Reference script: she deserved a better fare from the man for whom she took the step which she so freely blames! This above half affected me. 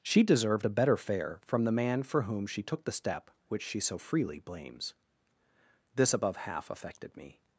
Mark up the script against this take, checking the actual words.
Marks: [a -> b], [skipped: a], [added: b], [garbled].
she deserved a better fare from the man for whom she took the step which she so freely blames! This above half affected me.